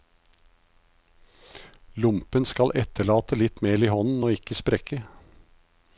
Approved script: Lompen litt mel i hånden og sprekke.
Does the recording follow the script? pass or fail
fail